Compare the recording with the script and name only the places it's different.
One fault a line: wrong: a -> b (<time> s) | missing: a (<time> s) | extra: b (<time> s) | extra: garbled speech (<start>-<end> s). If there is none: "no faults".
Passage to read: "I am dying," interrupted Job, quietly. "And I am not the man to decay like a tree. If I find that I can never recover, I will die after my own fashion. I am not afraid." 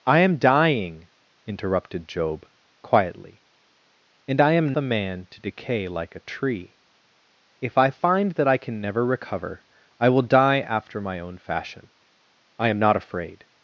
missing: not (4.7 s)